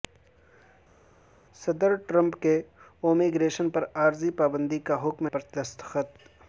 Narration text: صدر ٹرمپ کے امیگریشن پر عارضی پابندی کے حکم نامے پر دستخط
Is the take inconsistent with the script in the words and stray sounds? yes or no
yes